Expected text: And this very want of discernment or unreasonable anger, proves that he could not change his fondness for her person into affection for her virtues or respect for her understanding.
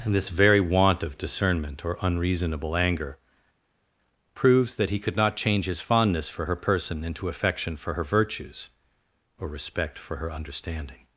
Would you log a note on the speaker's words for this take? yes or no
no